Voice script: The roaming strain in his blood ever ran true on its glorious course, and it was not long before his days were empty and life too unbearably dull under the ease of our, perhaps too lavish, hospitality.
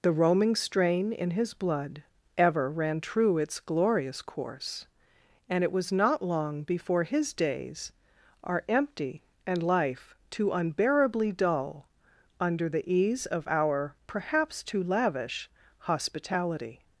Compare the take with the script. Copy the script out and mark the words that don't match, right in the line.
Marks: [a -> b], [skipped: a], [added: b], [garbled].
The roaming strain in his blood ever ran true [skipped: on] its glorious course, and it was not long before his days [were -> are] empty and life too unbearably dull under the ease of our, perhaps too lavish, hospitality.